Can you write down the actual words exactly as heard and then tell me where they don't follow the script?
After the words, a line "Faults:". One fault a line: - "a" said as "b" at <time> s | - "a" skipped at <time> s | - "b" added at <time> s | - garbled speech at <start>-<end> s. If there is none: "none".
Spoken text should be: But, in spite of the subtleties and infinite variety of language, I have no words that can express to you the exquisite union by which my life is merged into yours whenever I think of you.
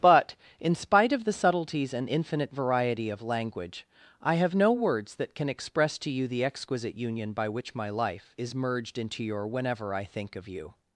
But, in spite of the subtleties and infinite variety of language, I have no words that can express to you the exquisite union by which my life is merged into your whenever I think of you.
Faults:
- "yours" said as "your" at 9.2 s